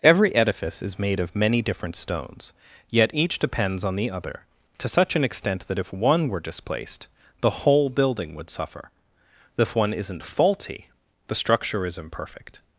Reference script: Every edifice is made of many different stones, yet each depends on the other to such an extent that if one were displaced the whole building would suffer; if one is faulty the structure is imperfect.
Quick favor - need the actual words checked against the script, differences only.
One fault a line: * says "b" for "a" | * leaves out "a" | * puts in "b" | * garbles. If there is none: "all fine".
* says "isn't" for "is"